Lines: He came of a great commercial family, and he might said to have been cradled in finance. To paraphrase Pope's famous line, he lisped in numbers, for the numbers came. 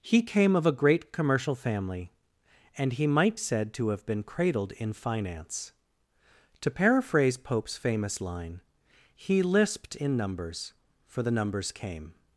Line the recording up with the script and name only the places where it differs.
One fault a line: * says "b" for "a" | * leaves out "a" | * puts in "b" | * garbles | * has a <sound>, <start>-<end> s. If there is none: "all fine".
all fine